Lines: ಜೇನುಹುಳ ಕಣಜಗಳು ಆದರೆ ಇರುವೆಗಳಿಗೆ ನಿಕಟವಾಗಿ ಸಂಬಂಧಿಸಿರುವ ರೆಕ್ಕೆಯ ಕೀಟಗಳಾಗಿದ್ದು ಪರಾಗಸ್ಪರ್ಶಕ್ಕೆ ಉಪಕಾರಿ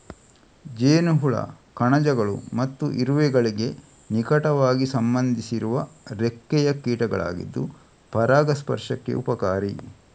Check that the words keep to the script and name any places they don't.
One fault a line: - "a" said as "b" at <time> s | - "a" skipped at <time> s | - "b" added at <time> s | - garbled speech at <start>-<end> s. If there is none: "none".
- "ಆದರೆ" said as "ಮತ್ತು" at 2.5 s